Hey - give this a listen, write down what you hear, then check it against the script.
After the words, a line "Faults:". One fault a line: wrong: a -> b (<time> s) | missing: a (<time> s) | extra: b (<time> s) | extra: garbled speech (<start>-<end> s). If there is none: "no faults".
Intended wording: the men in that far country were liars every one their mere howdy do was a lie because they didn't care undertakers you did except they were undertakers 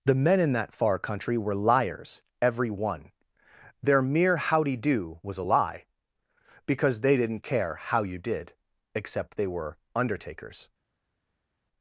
the men in that far country were liars every one their mere howdy do was a lie because they didn't care how you did except they were undertakers
Faults:
wrong: undertakers -> how (7.7 s)